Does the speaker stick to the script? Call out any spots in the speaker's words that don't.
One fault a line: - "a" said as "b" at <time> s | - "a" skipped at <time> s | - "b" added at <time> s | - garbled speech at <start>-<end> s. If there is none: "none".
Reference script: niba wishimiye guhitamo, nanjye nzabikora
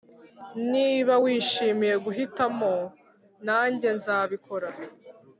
none